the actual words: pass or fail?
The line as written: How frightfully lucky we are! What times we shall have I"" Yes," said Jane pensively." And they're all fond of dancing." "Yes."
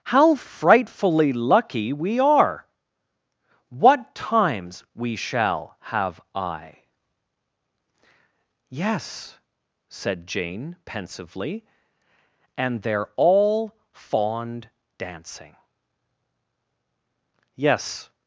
fail